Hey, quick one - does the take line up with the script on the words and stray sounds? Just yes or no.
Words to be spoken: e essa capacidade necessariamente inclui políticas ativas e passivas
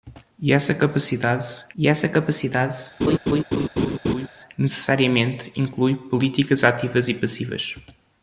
no